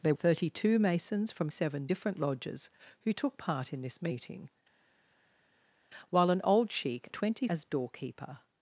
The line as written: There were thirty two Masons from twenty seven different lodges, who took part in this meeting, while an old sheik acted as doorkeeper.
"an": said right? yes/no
yes